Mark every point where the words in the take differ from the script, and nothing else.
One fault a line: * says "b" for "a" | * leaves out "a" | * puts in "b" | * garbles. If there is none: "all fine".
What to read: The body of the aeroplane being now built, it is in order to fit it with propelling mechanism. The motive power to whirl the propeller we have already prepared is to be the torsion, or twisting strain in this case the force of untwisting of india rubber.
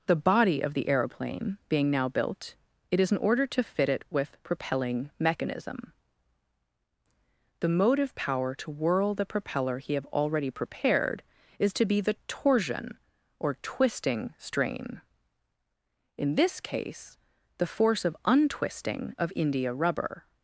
* says "he" for "we"